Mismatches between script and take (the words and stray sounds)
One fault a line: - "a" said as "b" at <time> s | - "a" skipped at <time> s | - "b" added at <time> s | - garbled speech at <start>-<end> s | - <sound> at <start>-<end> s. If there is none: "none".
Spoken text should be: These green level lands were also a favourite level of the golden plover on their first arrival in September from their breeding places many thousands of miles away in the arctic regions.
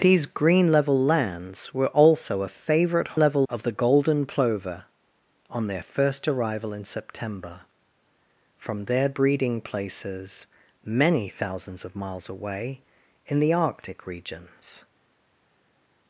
none